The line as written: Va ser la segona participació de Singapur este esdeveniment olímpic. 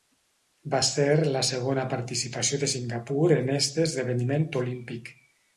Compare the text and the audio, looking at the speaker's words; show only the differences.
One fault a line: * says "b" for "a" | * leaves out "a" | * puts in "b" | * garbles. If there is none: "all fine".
* puts in "en"